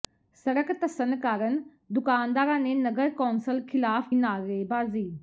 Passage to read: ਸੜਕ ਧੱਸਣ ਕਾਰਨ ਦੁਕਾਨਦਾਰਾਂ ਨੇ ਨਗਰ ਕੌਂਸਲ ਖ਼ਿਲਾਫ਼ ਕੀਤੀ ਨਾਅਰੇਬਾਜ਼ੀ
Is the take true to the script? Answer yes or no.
no